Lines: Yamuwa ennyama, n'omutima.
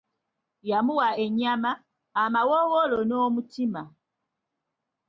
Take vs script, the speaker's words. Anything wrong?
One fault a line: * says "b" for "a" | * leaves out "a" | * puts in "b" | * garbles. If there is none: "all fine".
* puts in "amawoowolo"